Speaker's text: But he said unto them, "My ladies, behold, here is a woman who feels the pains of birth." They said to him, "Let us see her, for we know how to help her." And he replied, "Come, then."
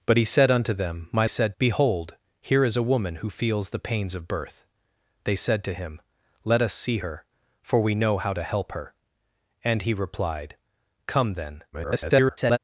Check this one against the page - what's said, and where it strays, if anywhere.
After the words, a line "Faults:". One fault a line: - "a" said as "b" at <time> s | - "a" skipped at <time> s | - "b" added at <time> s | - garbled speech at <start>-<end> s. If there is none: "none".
But he said unto them, "My said, behold, here is a woman who feels the pains of birth." They said to him, "Let us see her, for we know how to help her." And he replied, "Come, then." [garbled]
Faults:
- "ladies" said as "said" at 1.3 s
- garbled speech at 11.7-12.6 s